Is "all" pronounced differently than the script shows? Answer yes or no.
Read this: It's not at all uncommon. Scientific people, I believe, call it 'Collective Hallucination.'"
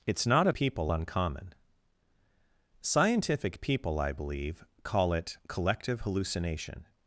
yes